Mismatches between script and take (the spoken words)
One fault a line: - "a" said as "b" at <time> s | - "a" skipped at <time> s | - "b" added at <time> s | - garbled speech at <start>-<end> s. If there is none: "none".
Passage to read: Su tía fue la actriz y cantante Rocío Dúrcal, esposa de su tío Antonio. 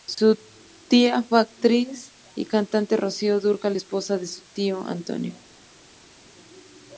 none